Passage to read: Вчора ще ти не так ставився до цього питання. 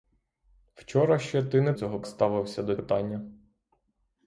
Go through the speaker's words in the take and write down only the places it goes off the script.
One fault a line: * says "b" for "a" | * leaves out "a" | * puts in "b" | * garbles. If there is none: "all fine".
* says "цього" for "так"
* leaves out "цього"